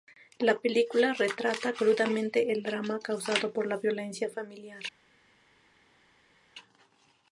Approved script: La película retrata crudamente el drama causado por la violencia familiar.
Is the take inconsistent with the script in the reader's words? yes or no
no